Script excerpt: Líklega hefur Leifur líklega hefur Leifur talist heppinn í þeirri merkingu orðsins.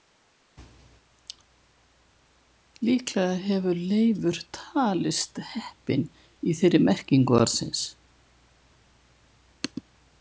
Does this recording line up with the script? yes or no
no